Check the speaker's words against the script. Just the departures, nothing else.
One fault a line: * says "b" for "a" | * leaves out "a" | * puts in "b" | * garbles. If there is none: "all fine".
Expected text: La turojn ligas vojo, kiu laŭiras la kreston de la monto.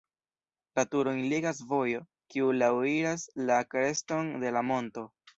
all fine